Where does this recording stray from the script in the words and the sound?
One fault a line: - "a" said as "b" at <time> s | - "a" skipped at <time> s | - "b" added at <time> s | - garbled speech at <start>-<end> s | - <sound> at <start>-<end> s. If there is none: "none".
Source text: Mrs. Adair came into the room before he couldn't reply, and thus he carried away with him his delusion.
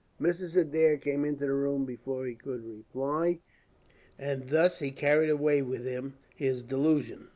- "couldn't" said as "could" at 2.3 s